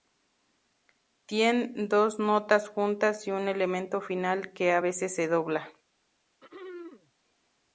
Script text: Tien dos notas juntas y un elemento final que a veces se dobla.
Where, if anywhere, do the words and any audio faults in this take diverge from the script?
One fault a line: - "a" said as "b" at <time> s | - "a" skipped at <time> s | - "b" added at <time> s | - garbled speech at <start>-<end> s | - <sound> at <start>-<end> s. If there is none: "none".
- throat clearing at 6.4-7.1 s